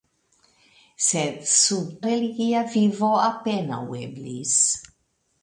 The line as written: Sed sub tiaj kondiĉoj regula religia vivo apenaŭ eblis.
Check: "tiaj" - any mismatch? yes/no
yes